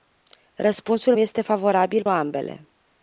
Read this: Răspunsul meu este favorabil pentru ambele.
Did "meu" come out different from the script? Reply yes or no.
yes